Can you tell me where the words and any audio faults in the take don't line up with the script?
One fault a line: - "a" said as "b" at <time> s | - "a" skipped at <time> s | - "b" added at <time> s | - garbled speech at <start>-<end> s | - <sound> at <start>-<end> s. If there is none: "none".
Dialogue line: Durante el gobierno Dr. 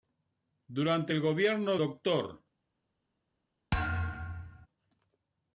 - thud at 3.7-4.7 s